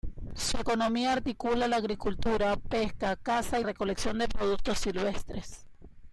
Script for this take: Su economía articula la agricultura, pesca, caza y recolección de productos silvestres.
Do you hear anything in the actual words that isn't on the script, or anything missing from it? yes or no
no